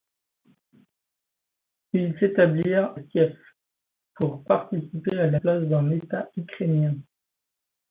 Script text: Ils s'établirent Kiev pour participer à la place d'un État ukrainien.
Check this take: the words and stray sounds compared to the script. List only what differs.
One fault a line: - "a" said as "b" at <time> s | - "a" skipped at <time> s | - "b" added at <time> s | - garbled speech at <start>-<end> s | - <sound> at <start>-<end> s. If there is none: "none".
none